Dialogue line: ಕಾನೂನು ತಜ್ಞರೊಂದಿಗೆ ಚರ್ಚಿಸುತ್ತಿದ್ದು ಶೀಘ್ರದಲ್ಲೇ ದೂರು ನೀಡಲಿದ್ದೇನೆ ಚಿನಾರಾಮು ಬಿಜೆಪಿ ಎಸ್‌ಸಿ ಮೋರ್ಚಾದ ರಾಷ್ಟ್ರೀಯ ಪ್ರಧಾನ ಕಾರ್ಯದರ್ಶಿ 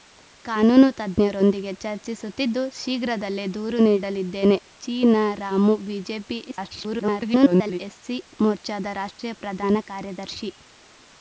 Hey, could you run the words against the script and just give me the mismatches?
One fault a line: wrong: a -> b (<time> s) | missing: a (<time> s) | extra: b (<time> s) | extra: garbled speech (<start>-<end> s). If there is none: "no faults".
extra: garbled speech (6.5-7.8 s)